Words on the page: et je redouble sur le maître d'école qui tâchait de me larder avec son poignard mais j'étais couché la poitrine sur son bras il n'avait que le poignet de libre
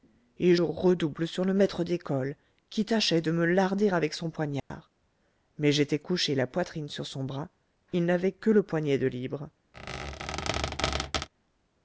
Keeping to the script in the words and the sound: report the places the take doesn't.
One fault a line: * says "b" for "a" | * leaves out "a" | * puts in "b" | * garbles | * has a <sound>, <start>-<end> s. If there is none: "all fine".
* leaves out "je"
* has a dropout, 4.6-4.7 s
* has a squeak, 9.7-11.3 s